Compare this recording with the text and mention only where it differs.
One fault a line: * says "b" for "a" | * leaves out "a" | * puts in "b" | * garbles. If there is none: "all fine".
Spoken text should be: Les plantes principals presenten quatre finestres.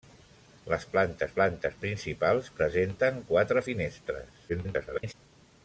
* puts in "plantes"
* garbles